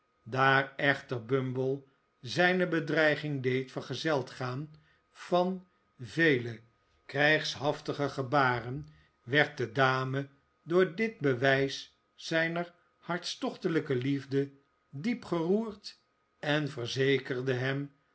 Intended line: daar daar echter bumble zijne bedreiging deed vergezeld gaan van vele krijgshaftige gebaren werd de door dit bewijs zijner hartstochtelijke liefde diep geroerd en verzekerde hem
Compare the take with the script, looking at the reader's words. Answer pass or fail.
fail